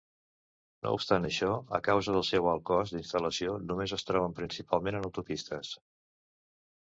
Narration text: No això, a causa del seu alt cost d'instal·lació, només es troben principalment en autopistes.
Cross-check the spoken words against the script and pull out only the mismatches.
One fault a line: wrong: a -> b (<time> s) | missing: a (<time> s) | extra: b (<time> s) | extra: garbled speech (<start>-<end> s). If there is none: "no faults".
extra: obstant (1.0 s)